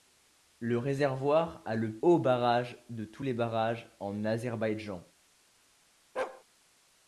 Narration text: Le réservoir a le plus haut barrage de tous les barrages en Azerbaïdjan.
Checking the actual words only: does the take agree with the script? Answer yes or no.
no